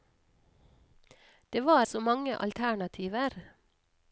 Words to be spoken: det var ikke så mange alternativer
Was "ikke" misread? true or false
true